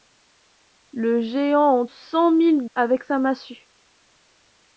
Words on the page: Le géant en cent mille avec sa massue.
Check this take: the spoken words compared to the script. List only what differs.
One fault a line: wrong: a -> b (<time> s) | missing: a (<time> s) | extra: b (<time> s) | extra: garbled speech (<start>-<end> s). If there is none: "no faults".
no faults